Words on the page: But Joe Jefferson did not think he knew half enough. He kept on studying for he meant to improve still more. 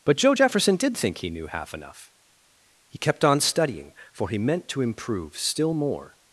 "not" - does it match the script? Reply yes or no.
no